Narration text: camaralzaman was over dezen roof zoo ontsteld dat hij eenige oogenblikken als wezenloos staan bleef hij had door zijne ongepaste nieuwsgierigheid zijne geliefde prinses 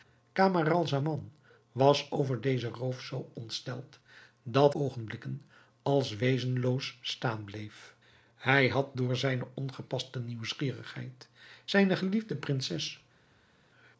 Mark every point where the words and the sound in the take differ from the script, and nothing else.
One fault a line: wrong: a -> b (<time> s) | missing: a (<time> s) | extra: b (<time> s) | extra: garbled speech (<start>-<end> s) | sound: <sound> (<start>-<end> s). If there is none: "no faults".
missing: hij eenige (4.7 s)